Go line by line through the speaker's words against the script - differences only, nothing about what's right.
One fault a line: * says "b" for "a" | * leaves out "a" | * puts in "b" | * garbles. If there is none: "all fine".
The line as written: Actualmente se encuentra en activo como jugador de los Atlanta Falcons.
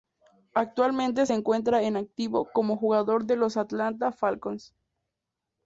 all fine